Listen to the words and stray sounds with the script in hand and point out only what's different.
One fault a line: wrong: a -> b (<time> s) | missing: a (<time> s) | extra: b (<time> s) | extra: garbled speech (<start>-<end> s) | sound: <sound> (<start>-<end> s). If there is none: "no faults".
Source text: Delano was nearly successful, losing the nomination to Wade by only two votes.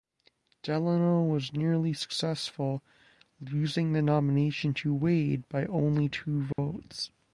sound: dropout (6.5-6.6 s)